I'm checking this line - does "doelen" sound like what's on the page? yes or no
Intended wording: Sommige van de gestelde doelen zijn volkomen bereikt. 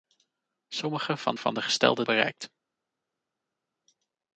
no